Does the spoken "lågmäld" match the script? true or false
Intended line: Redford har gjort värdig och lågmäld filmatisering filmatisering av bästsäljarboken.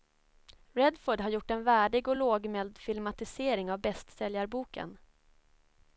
true